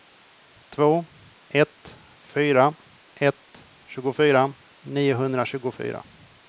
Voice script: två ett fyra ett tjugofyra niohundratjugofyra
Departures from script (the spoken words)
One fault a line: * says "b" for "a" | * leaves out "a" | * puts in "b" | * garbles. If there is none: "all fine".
all fine